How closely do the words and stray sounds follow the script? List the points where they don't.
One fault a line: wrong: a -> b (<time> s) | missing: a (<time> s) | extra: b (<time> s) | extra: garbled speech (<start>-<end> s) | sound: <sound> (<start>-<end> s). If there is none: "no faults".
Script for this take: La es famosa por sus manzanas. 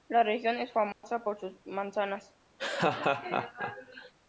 extra: región (0.2 s)
sound: dropout (0.9-1.0 s)
sound: laugh (2.6-4.1 s)